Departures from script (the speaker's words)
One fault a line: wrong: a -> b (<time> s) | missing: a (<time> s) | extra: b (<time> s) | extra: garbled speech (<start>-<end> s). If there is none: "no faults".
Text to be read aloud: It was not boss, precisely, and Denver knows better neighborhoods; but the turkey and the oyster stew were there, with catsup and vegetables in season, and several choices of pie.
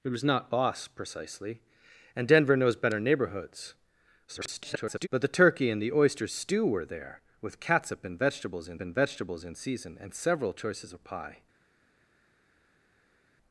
extra: garbled speech (4.3-5.1 s)
extra: and vegetables in (8.8 s)